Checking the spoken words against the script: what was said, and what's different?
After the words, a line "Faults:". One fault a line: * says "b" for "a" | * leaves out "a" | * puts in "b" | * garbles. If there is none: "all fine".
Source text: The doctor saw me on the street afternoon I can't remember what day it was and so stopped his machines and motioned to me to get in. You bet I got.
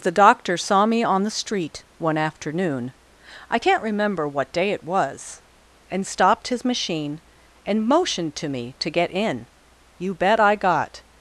The doctor saw me on the street one afternoon I can't remember what day it was and stopped his machine and motioned to me to get in. You bet I got.
Faults:
* puts in "one"
* leaves out "so"
* says "machine" for "machines"